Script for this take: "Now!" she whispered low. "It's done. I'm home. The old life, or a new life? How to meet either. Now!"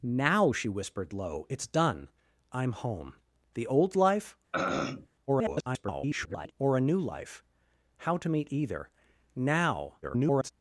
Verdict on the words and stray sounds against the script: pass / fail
fail